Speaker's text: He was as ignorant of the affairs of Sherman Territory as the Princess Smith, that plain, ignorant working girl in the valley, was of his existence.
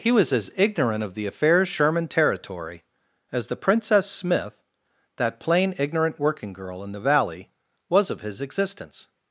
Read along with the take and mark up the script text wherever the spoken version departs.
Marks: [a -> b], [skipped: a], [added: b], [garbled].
He was as ignorant of the affairs [skipped: of] Sherman Territory as the Princess Smith, that plain, ignorant working girl in the valley, was of his existence.